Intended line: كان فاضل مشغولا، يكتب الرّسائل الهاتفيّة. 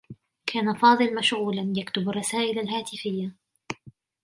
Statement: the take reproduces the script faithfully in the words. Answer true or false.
true